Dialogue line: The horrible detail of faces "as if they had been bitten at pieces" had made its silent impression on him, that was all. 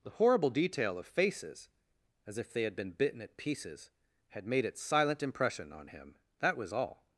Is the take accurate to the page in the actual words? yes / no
yes